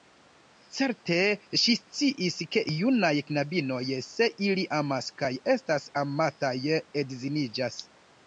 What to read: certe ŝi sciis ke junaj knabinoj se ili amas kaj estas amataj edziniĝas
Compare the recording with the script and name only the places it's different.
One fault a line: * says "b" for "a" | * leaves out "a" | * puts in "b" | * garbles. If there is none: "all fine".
all fine